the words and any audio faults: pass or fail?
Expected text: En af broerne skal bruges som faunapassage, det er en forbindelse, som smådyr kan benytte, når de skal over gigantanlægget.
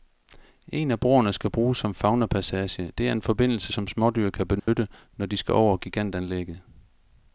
fail